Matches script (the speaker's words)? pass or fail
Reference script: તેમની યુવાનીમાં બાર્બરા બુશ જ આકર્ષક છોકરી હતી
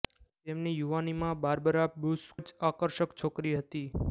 pass